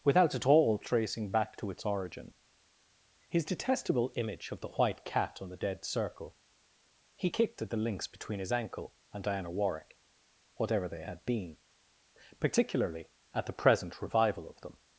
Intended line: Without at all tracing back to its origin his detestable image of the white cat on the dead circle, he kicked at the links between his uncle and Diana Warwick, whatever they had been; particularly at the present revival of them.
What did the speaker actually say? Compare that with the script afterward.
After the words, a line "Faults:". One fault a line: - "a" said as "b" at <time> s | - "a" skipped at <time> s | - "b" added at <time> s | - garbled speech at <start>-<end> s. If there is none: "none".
Without at all tracing back to its origin his detestable image of the white cat on the dead circle, he kicked at the links between his ankle and Diana Warwick, whatever they had been; particularly at the present revival of them.
Faults:
- "uncle" said as "ankle" at 8.5 s